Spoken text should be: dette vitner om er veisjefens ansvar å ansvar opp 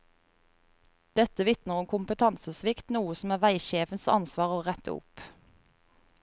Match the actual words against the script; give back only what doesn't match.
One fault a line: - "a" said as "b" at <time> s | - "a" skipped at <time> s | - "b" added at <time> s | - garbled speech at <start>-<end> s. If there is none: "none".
- "kompetansesvikt noe som" added at 1.9 s
- "ansvar" said as "rette" at 4.7 s